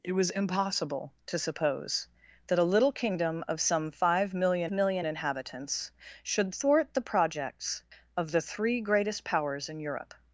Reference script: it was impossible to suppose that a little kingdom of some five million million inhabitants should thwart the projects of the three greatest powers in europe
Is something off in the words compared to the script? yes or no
no